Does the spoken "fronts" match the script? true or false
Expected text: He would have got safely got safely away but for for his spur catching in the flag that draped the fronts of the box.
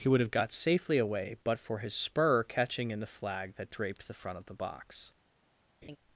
false